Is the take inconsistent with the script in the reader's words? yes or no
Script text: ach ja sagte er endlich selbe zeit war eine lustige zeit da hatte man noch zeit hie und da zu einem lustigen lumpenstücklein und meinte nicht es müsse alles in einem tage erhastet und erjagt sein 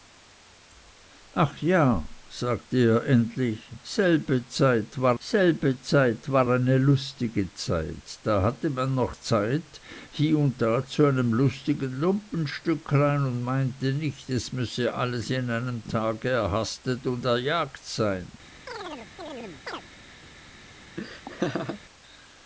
yes